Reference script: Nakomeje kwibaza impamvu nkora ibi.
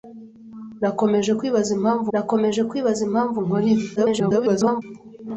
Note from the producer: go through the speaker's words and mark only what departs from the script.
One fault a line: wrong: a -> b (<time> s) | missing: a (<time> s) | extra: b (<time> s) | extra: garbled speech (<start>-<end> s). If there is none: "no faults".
extra: nakomeje kwibaza impamvu (2.1 s)
extra: garbled speech (4.0-4.8 s)